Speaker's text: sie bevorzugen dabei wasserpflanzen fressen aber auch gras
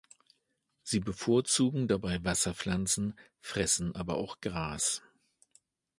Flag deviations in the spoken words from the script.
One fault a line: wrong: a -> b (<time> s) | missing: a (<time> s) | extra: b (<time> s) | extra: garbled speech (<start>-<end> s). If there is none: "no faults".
no faults